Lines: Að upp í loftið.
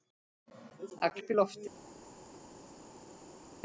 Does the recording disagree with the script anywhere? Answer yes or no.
no